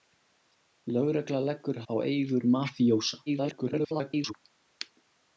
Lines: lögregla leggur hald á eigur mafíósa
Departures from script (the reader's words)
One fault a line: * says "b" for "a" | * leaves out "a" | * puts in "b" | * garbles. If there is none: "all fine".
* leaves out "hald"
* garbles